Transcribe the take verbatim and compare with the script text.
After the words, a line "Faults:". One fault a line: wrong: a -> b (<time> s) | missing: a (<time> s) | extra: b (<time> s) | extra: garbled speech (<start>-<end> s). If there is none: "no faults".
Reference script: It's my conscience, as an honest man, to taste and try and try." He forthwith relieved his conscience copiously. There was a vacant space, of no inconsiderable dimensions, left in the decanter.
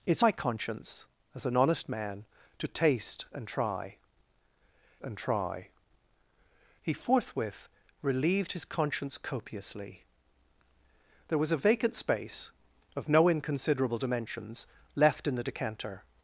It's my conscience, as an honest man, to taste and try and try." He forthwith relieved his conscience copiously. There was a vacant space, of no inconsiderable dimensions, left in the decanter.
Faults:
no faults